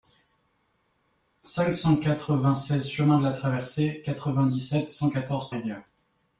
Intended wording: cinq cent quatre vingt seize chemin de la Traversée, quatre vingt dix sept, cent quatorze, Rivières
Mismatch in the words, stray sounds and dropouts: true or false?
false